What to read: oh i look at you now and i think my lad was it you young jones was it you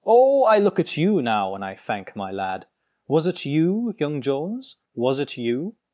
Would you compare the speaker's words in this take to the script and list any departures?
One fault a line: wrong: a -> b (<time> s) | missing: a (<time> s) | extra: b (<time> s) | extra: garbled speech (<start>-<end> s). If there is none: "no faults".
wrong: think -> thank (1.7 s)